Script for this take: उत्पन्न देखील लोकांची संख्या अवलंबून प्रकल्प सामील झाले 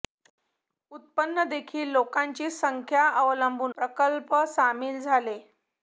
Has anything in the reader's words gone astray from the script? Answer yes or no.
no